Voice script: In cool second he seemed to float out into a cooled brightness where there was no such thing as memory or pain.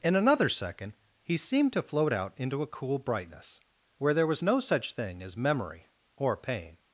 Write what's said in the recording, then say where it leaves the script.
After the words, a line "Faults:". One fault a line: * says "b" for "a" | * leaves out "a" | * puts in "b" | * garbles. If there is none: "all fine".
In another second he seemed to float out into a cool brightness where there was no such thing as memory or pain.
Faults:
* says "another" for "cool"
* says "cool" for "cooled"